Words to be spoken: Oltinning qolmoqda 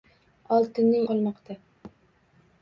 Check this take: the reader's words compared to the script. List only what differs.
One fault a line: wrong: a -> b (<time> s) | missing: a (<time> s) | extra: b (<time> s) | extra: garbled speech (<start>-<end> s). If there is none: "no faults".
no faults